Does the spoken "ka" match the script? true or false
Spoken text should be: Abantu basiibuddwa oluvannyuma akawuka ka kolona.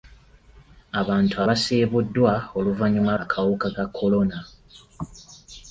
true